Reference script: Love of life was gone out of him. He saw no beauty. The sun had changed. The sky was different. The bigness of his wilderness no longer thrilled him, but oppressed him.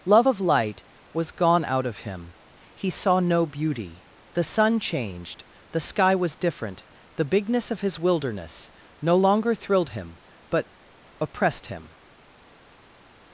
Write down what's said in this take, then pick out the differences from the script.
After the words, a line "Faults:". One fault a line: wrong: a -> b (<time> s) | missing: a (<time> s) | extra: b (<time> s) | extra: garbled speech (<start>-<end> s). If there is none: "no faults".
Love of light was gone out of him. He saw no beauty. The sun changed. The sky was different. The bigness of his wilderness no longer thrilled him, but oppressed him.
Faults:
wrong: life -> light (0.4 s)
missing: had (4.8 s)